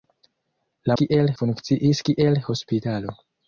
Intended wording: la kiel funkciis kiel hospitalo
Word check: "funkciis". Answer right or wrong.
right